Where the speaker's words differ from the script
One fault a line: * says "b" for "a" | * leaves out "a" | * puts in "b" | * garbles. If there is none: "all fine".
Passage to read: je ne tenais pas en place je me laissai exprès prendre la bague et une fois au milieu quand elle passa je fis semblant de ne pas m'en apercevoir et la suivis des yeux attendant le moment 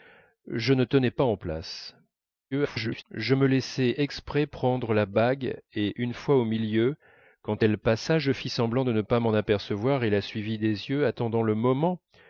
* garbles